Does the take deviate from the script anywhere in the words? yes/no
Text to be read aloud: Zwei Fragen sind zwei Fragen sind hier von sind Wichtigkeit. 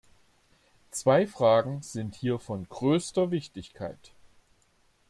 yes